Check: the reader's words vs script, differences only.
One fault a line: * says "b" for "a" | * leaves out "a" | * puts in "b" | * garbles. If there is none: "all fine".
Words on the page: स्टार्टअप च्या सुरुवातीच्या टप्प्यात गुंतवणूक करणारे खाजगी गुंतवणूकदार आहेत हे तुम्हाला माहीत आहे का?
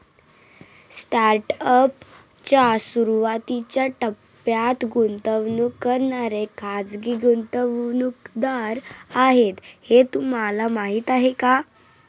all fine